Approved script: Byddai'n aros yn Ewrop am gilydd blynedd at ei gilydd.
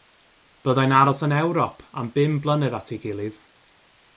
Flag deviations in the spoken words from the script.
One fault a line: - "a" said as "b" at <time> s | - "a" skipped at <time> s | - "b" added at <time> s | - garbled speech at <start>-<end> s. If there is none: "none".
- "gilydd" said as "bum" at 2.1 s